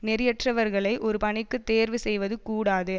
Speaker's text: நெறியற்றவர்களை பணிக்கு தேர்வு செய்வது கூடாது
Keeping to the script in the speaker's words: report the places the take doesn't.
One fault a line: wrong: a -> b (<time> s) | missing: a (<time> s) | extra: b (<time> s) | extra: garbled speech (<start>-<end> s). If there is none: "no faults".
extra: ஒரு (1.0 s)